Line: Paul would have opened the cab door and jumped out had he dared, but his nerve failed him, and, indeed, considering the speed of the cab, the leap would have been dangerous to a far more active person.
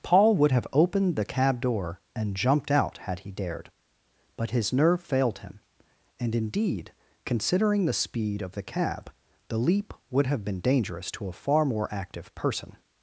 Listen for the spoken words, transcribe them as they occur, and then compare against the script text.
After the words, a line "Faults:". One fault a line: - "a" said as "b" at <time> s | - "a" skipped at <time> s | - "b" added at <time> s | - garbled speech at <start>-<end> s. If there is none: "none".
Paul would have opened the cab door and jumped out had he dared, but his nerve failed him, and, indeed, considering the speed of the cab, the leap would have been dangerous to a far more active person.
Faults:
none